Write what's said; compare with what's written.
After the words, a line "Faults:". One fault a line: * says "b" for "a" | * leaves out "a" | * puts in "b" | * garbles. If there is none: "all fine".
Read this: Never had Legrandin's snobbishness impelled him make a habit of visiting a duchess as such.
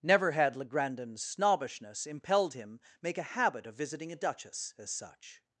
Never had Legrandin's snobbishness impelled him make a habit of visiting a duchess as such.
Faults:
all fine